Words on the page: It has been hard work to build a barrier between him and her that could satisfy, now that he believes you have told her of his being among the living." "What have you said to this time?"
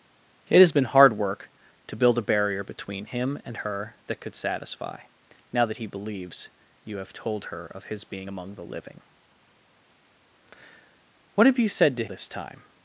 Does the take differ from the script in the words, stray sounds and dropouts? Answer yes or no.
no